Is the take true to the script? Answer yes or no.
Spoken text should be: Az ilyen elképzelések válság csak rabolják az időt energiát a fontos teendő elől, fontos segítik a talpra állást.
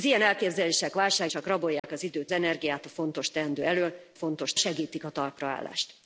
yes